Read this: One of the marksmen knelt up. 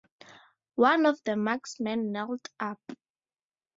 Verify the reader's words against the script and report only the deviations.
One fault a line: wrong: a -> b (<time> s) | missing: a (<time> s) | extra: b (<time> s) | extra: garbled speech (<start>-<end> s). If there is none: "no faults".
no faults